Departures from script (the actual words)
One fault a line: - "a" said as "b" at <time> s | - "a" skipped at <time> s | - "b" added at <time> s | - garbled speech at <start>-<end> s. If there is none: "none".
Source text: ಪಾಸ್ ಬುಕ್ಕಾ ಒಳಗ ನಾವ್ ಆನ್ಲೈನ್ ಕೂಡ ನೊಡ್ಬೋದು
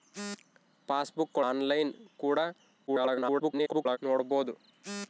- "ಒಳಗ ನಾವ್" skipped at 1.4 s
- garbled speech at 2.9-4.0 s